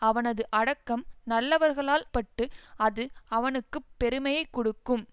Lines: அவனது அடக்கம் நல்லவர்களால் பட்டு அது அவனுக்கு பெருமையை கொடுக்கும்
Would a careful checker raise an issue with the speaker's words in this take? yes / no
no